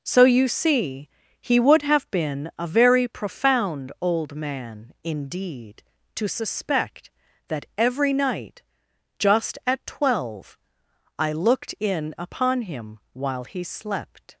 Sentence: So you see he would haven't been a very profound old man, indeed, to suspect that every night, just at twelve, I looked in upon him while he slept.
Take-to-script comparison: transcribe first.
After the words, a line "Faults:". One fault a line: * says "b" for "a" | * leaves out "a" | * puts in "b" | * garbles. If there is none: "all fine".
So you see he would have been a very profound old man, indeed, to suspect that every night, just at twelve, I looked in upon him while he slept.
Faults:
* says "have" for "haven't"